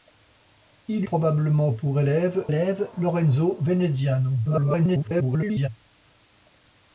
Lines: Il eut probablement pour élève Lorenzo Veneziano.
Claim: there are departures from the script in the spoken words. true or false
true